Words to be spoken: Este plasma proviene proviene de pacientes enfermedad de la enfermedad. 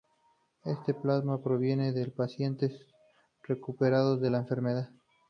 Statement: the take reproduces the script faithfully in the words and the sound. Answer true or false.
false